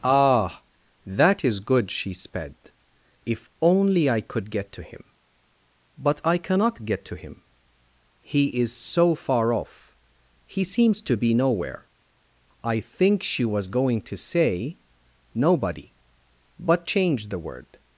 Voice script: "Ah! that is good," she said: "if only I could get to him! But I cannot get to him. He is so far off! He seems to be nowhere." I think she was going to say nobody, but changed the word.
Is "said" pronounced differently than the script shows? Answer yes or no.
yes